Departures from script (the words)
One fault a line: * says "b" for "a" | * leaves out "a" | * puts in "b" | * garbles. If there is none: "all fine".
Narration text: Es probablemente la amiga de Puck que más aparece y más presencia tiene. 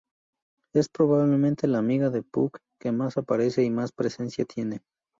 all fine